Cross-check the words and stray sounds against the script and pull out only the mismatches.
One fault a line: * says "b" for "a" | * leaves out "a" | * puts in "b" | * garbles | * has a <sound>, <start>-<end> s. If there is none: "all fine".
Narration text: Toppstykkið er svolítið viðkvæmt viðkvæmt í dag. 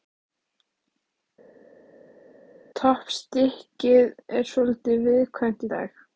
* leaves out "viðkvæmt"